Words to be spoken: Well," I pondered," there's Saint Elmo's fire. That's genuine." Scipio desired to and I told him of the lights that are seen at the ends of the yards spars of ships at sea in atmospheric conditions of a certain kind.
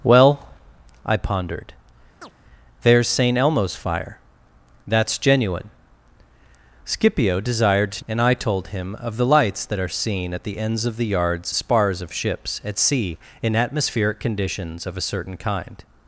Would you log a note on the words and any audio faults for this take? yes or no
yes